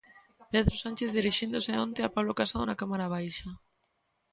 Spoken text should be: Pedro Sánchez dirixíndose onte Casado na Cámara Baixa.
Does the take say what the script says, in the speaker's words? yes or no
no